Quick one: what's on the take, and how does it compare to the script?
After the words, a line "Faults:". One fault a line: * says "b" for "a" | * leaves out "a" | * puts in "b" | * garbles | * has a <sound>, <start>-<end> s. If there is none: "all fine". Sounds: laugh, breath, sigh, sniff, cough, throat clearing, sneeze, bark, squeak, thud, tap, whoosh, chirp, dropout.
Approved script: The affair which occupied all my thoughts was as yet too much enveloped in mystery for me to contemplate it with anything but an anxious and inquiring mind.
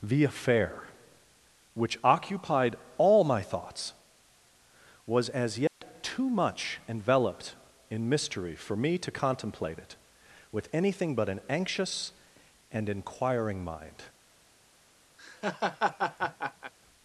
The affair which occupied all my thoughts was as yet too much enveloped in mystery for me to contemplate it with anything but an anxious and inquiring mind.
Faults:
* has a dropout, 5.7-5.8 s
* has a laugh, 15.2-16.7 s